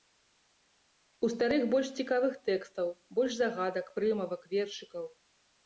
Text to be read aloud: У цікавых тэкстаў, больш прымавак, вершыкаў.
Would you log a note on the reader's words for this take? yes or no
yes